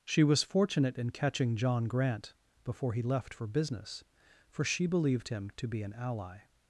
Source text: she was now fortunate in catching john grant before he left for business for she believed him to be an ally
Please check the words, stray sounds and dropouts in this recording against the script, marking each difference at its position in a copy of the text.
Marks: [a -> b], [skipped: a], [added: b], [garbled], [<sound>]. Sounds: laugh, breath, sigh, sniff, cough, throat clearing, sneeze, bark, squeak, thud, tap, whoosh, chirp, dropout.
she was [skipped: now] fortunate in catching john grant before he left for business for she believed him to be an ally